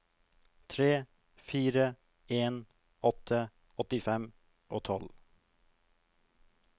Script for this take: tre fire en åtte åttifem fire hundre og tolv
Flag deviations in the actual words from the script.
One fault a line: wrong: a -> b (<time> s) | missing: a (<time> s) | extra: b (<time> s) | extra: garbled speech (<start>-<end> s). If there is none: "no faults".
missing: fire hundre (4.3 s)